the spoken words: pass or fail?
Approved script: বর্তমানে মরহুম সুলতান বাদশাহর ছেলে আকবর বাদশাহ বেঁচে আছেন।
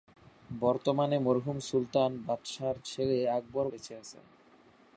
fail